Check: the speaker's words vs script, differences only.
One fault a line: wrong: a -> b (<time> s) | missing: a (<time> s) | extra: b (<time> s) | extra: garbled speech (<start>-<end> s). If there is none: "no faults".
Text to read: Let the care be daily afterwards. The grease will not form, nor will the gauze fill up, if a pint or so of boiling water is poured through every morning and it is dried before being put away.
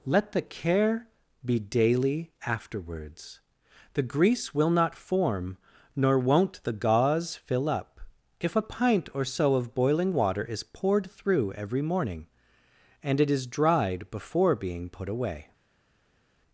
wrong: will -> won't (6.2 s)